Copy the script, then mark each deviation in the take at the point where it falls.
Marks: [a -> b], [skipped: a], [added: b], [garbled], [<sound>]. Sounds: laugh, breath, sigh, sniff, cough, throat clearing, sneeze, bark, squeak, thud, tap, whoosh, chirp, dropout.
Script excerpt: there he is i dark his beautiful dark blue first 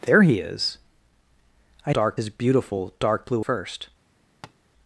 there he is i dark his beautiful dark blue first [tap]